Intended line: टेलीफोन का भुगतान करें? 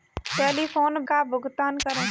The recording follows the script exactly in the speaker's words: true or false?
true